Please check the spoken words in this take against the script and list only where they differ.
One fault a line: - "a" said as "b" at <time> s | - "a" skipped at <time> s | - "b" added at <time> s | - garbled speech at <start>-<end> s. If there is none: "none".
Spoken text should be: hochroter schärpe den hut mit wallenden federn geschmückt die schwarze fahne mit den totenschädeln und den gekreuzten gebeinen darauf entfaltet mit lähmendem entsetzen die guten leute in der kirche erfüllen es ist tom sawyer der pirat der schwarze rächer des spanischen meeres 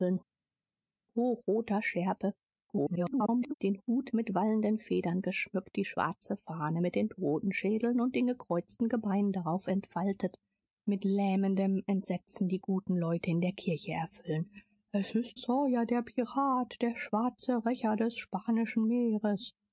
- garbled speech at 2.7-3.5 s
- "tom" skipped at 15.4 s